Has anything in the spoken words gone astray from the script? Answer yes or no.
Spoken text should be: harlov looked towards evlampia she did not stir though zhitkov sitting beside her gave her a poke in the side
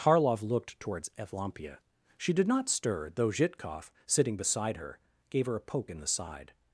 no